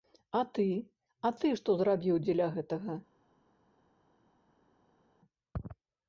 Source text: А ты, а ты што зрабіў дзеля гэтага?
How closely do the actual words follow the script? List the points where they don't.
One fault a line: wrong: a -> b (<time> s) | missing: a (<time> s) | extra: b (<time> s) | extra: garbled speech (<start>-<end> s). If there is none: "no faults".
no faults